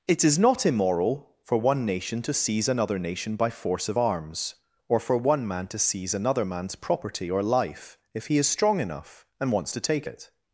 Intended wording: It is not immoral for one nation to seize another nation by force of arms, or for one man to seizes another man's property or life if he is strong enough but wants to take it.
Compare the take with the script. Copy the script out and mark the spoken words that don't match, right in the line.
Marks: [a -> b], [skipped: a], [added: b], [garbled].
It is not immoral for one nation to seize another nation by force of arms, or for one man to [seizes -> seize] another man's property or life if he is strong enough [but -> and] wants to take it.